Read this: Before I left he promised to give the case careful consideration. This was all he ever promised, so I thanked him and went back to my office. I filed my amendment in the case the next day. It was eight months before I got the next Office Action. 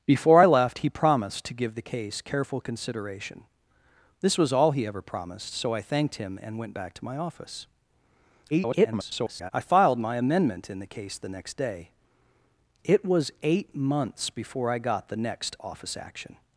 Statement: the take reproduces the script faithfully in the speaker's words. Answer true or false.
false